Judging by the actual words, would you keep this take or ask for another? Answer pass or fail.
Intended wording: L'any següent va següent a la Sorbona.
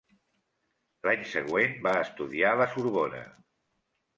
fail